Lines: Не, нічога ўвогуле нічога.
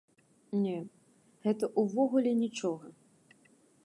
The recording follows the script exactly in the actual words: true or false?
false